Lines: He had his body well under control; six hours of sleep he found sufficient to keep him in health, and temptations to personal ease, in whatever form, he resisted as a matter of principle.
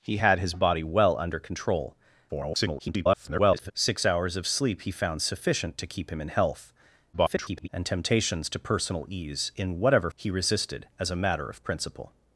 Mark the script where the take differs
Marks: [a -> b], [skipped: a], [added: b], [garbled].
He had his body well under control; [garbled] six hours of sleep he found sufficient to keep him in health, [garbled] and temptations to personal ease, in whatever [skipped: form,] he resisted as a matter of principle.